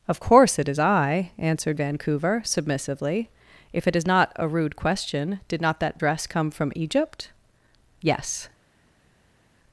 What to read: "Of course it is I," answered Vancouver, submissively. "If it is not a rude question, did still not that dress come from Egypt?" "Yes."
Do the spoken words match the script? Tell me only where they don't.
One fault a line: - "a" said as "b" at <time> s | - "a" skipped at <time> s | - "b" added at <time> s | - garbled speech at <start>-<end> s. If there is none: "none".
- "still" skipped at 5.6 s